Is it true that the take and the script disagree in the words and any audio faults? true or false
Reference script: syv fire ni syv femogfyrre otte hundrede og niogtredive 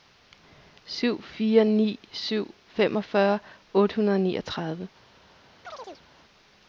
true